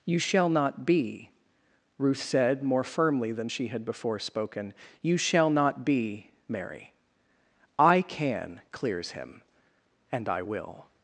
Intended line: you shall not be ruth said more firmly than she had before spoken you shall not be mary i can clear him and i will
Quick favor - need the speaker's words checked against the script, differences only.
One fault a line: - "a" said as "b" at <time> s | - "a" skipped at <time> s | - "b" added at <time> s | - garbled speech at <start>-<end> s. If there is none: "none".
- "clear" said as "clears" at 8.7 s